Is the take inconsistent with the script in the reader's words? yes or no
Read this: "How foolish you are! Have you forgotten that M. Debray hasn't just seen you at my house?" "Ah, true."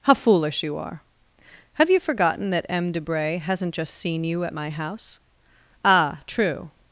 no